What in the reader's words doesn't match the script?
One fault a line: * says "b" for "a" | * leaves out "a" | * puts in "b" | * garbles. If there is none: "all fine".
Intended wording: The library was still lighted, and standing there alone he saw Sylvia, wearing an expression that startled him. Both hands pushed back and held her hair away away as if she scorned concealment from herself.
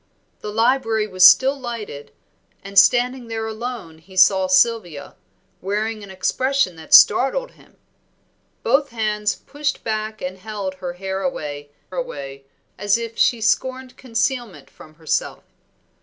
all fine